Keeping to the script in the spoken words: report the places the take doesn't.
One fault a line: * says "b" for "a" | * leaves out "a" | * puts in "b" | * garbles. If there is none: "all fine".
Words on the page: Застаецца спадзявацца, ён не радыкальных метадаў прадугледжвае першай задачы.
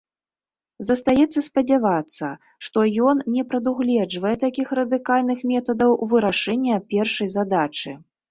* puts in "што"
* puts in "прадугледжвае такіх"
* says "вырашэння" for "прадугледжвае"